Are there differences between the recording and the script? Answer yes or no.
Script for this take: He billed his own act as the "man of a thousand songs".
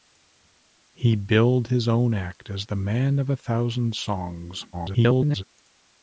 yes